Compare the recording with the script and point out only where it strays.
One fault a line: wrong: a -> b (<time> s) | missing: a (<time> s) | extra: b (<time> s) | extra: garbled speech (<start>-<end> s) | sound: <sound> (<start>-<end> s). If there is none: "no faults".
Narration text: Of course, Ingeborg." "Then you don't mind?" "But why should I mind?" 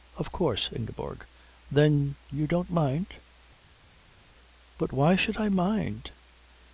no faults